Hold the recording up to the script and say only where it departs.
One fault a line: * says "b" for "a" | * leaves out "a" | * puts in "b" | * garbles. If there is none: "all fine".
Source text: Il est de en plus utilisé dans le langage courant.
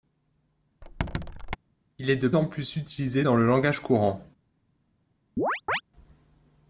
all fine